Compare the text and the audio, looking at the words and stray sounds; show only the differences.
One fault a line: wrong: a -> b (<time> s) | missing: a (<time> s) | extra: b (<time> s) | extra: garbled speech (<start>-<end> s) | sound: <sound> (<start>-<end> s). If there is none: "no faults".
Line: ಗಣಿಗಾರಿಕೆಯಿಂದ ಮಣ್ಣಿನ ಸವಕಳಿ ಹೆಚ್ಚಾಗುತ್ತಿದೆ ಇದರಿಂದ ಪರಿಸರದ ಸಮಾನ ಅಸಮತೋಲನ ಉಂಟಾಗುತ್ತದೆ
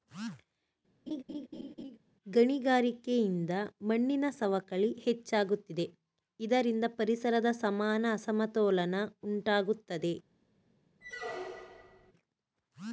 sound: laugh (1.1-2.0 s)
sound: squeak (11.0-12.1 s)